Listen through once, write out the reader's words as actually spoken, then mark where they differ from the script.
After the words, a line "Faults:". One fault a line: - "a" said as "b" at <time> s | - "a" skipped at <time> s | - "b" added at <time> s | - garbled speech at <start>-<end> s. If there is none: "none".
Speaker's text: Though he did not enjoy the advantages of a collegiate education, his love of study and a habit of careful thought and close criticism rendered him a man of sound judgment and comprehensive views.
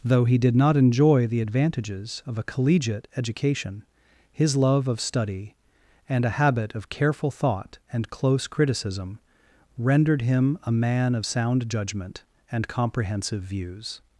Though he did not enjoy the advantages of a collegiate education, his love of study and a habit of careful thought and close criticism rendered him a man of sound judgment and comprehensive views.
Faults:
none